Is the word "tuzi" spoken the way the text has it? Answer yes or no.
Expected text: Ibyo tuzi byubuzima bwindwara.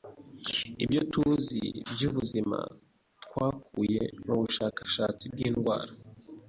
yes